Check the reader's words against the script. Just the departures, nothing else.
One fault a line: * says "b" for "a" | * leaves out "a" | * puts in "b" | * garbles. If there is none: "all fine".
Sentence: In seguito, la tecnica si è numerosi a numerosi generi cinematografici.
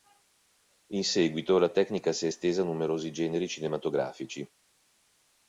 * says "estesa" for "numerosi"